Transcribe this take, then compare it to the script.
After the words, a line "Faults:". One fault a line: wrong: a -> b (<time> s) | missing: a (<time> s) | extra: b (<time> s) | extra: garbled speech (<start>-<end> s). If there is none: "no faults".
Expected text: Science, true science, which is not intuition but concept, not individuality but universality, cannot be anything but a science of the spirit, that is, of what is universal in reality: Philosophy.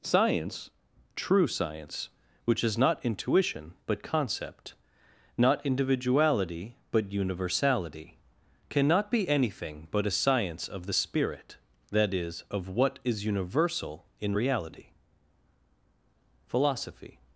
Science, true science, which is not intuition but concept, not individuality but universality, cannot be anything but a science of the spirit, that is, of what is universal in reality: Philosophy.
Faults:
no faults